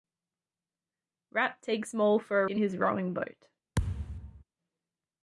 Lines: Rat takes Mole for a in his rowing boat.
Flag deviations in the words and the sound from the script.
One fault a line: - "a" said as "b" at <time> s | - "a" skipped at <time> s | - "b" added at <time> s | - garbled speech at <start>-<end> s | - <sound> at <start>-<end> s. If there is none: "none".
- thud at 3.7-4.4 s